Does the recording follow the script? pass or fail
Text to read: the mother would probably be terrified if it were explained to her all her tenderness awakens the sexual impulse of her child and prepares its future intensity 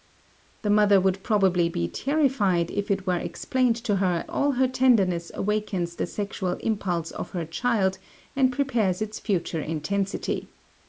pass